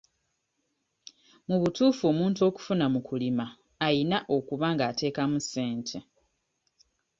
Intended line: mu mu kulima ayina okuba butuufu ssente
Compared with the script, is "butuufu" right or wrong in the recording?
wrong